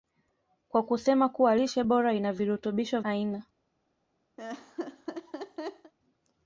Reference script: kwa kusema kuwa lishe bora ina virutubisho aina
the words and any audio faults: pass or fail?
fail